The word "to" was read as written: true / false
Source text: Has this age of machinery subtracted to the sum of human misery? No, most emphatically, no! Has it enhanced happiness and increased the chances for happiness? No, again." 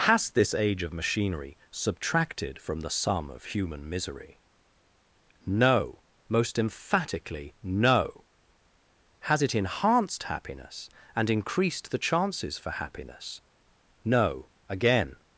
false